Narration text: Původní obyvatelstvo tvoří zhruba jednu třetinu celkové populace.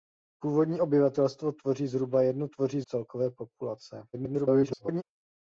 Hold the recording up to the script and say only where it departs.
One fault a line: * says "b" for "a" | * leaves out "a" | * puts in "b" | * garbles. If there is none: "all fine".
* says "tvoří" for "třetinu"
* garbles